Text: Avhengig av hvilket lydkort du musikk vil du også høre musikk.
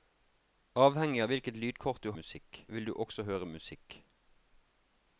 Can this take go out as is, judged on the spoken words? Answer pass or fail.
pass